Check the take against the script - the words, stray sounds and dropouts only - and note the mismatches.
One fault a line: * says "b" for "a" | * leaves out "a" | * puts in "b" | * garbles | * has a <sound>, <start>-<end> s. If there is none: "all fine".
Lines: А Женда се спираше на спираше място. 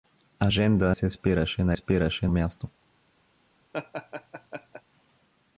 * has a laugh, 3.7-4.8 s